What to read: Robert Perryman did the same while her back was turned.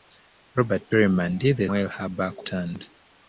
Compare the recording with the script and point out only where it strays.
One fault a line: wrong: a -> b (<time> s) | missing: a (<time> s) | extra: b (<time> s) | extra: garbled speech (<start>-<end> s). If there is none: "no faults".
missing: same (1.7 s)
missing: was (2.5 s)